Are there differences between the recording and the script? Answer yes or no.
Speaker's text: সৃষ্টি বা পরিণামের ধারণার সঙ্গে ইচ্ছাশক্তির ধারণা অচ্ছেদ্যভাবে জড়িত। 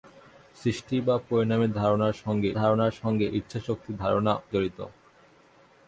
yes